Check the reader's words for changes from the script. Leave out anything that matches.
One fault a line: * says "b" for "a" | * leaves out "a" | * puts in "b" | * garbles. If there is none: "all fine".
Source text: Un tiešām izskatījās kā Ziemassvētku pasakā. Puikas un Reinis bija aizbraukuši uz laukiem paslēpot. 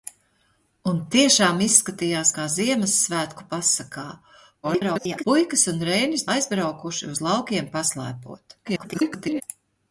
* garbles
* leaves out "bija"
* garbles